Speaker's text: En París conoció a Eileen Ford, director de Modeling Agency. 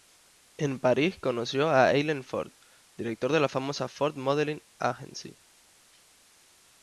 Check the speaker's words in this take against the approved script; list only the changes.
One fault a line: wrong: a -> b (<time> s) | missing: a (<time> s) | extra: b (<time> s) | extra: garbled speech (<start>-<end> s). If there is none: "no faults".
extra: la famosa Ford (3.4 s)